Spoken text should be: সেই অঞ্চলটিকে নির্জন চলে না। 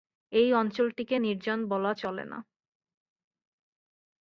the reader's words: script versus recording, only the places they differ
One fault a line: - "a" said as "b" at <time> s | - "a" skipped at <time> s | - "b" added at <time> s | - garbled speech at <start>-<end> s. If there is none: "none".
- "সেই" said as "এই" at 0.3 s
- "বলা" added at 1.7 s